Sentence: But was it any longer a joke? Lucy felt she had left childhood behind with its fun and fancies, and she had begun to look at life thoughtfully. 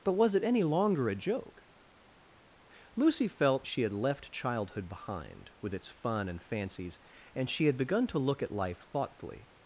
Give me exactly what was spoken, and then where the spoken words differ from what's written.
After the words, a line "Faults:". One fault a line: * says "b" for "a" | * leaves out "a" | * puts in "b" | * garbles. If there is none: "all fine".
But was it any longer a joke? Lucy felt she had left childhood behind with its fun and fancies, and she had begun to look at life thoughtfully.
Faults:
all fine